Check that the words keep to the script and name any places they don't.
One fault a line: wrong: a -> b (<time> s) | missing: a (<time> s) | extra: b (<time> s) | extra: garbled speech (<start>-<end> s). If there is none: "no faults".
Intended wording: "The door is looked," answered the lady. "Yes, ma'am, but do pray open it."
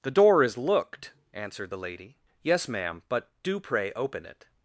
no faults